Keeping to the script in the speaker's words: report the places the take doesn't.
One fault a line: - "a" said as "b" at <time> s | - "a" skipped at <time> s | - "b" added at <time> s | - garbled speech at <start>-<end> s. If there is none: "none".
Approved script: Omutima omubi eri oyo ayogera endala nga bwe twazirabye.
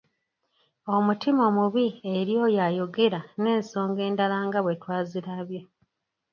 - "n'ensonga" added at 3.4 s